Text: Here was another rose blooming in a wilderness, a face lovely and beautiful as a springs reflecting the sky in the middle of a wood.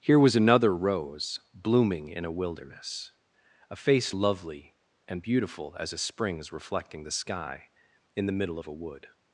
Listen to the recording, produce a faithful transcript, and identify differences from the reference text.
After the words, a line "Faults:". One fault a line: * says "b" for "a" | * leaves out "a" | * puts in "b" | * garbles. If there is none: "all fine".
Here was another rose blooming in a wilderness, a face lovely and beautiful as a springs reflecting the sky in the middle of a wood.
Faults:
all fine